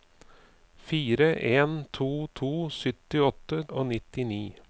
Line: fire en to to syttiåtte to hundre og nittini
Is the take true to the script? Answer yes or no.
no